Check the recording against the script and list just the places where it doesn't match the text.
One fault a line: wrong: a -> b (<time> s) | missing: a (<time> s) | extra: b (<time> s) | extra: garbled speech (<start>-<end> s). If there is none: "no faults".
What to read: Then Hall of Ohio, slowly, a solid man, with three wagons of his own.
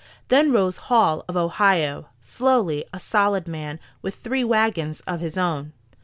extra: rose (0.5 s)